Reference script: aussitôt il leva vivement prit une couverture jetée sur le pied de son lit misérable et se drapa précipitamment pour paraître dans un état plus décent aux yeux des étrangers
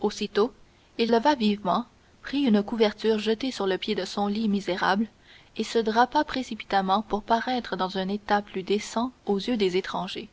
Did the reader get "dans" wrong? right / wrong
right